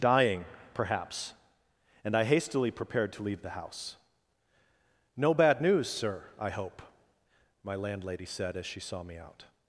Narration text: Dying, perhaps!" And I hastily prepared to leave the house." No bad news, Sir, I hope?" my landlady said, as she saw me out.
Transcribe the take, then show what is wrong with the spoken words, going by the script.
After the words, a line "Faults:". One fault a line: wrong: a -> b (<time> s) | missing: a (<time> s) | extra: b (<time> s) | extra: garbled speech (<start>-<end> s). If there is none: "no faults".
Dying, perhaps!" And I hastily prepared to leave the house." No bad news, Sir, I hope?" my landlady said, as she saw me out.
Faults:
no faults